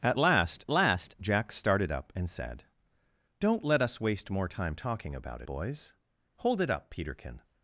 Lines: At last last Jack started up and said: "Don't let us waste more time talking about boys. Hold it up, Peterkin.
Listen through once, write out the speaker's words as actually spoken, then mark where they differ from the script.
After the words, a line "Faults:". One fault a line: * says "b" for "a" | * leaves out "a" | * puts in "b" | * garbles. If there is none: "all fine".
At last last Jack started up and said: "Don't let us waste more time talking about boys. Hold it up, Peterkin.
Faults:
all fine